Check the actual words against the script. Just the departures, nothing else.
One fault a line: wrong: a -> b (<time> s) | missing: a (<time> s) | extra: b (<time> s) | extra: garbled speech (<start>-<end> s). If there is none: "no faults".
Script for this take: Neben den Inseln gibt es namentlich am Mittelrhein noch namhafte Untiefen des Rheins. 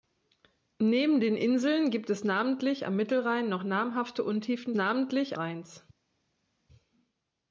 wrong: des -> namentlich (4.7 s)